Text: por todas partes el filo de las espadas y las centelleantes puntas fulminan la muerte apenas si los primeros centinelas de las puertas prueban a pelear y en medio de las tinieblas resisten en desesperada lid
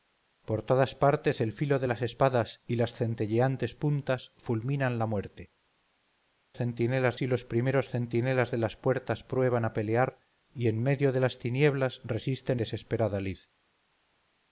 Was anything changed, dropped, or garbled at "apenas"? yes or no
yes